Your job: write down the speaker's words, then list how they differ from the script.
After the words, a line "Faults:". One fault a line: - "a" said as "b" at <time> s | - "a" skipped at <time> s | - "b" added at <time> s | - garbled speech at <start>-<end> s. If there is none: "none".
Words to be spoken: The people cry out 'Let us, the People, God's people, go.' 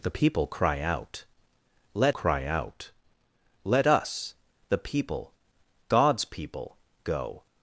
The people cry out 'Let cry out Let us, the People, God's people, go.'
Faults:
- "cry out Let" added at 2.1 s